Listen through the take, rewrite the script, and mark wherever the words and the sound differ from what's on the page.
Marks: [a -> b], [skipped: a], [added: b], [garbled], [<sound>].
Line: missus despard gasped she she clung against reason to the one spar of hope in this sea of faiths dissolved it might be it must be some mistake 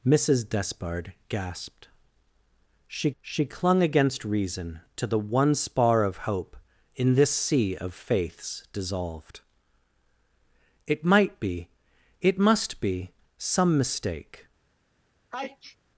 missus despard gasped she she clung against reason to the one spar of hope in this sea of faiths dissolved it might be it must be some mistake [sneeze]